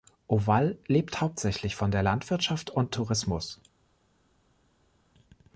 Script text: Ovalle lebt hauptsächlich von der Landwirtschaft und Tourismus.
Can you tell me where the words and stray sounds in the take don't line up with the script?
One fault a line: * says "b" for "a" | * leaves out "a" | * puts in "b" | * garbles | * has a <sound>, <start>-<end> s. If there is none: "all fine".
all fine